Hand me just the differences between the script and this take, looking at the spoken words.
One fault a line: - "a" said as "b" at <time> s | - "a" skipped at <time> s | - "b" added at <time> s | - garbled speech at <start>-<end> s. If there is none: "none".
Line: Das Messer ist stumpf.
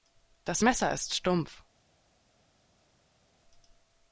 none